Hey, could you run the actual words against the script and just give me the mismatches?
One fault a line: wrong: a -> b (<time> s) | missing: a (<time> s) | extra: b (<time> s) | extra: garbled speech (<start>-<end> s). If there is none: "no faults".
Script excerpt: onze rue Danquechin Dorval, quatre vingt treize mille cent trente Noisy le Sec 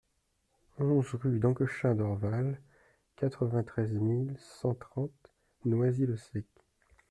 no faults